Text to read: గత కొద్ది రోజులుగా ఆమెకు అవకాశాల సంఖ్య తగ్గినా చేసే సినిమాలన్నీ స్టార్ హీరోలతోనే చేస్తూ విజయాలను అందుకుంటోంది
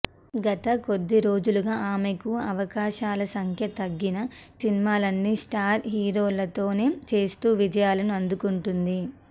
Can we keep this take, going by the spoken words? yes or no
no